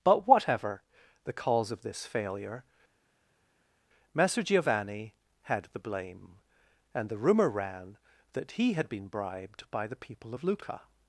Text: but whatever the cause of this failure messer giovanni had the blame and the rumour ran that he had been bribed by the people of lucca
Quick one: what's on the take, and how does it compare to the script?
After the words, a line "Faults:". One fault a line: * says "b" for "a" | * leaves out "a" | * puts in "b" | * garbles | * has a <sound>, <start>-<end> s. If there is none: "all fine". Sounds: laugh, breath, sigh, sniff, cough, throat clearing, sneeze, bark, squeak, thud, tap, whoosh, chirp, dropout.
but whatever the cause of this failure messer giovanni had the blame and the rumour ran that he had been bribed by the people of lucca
Faults:
all fine